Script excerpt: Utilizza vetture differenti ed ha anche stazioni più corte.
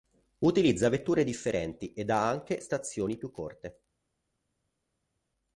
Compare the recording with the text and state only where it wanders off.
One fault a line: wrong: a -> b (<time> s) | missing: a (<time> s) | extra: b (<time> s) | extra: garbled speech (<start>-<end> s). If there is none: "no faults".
no faults